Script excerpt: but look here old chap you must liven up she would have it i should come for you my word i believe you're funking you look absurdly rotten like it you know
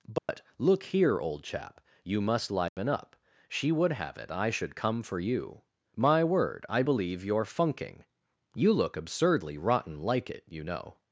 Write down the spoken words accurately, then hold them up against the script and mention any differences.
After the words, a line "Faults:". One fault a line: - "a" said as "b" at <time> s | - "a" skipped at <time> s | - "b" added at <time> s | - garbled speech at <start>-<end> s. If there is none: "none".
but look here old chap you must liven up she would have it i should come for you my word i believe you're funking you look absurdly rotten like it you know
Faults:
none